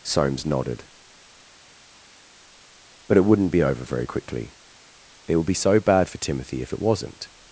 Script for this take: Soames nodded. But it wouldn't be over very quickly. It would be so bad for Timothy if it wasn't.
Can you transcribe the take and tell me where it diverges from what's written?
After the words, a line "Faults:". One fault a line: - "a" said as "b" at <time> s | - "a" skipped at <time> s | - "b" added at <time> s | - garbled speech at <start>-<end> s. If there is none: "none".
Soames nodded. But it wouldn't be over very quickly. It would be so bad for Timothy if it wasn't.
Faults:
none